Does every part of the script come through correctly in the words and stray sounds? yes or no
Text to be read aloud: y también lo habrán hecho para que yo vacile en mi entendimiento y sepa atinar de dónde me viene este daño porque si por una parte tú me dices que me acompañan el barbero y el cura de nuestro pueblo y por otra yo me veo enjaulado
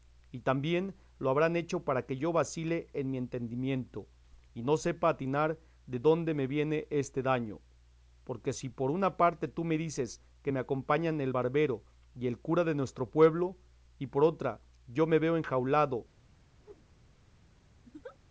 no